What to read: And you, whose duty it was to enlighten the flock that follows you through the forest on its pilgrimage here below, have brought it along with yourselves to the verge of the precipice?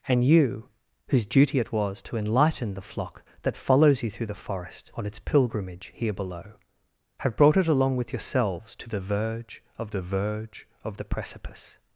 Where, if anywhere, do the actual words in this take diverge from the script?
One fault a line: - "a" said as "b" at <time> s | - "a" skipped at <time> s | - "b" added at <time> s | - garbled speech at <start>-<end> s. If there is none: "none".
- "verge of the" added at 10.0 s